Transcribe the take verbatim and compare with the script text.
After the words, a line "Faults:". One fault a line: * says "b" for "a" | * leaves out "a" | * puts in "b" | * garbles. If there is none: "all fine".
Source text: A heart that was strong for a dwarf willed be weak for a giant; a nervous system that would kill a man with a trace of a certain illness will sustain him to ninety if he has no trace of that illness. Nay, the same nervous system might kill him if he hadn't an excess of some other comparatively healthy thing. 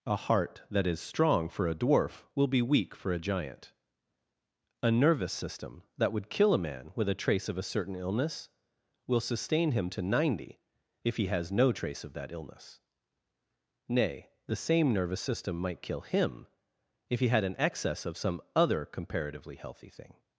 A heart that is strong for a dwarf will be weak for a giant; a nervous system that would kill a man with a trace of a certain illness will sustain him to ninety if he has no trace of that illness. Nay, the same nervous system might kill him if he had an excess of some other comparatively healthy thing.
Faults:
* says "is" for "was"
* says "will" for "willed"
* says "had" for "hadn't"